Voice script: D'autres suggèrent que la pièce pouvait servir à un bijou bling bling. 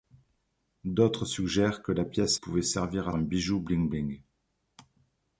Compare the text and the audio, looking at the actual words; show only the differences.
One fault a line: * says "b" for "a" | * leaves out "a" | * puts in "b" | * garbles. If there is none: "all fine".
all fine